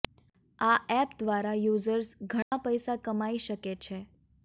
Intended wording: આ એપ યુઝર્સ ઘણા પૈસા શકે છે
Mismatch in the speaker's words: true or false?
true